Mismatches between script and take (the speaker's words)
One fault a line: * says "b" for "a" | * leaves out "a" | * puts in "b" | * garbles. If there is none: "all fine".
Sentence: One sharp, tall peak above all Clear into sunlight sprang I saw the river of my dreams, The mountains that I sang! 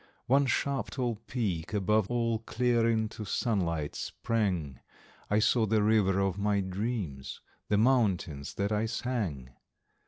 all fine